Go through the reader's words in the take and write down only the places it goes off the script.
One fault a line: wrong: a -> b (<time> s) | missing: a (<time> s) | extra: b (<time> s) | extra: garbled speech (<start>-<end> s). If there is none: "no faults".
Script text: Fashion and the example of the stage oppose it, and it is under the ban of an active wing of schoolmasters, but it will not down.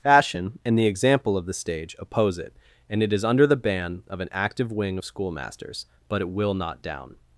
no faults